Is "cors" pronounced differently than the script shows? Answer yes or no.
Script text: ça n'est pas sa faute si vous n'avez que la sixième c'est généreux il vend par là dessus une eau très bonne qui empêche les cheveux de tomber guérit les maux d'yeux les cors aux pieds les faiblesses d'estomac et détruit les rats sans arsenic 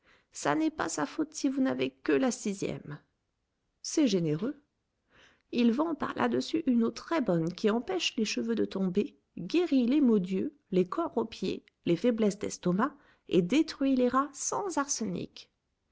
no